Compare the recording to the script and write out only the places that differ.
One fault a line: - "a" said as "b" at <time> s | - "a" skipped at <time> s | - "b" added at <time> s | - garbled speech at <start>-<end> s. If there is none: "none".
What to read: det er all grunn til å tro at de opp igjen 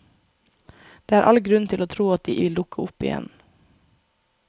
- "vil dukke" added at 2.4 s